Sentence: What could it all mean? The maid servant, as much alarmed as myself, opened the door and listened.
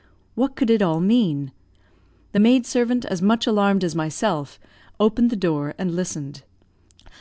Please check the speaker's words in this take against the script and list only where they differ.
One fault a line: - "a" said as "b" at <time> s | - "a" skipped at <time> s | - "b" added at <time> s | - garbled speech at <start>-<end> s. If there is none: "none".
none